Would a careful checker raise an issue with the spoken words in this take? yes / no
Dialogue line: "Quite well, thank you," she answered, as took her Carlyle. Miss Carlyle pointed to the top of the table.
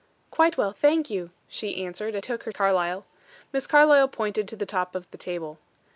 no